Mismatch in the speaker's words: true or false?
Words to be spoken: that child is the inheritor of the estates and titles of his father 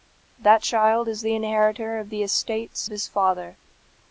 true